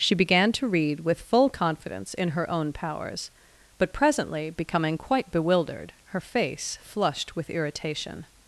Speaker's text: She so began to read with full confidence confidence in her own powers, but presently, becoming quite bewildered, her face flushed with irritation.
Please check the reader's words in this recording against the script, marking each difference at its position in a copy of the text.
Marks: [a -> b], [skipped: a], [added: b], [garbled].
She [skipped: so] began to read with full confidence [skipped: confidence] in her own powers, but presently, becoming quite bewildered, her face flushed with irritation.